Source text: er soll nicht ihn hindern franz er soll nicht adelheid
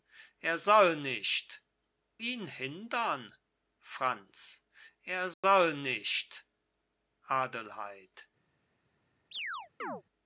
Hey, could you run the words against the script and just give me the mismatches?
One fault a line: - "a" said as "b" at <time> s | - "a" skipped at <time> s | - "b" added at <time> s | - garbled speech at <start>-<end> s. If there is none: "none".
none